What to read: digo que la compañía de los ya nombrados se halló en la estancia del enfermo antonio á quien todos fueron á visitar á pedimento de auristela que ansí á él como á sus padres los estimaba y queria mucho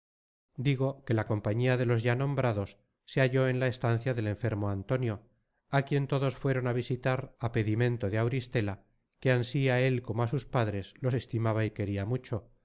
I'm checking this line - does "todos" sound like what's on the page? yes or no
yes